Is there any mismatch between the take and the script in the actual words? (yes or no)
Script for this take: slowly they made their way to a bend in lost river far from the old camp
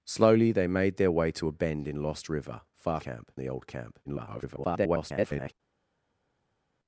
yes